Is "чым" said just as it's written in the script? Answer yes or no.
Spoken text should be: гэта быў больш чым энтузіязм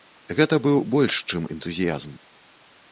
yes